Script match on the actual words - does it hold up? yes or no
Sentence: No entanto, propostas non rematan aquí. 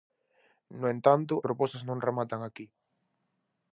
yes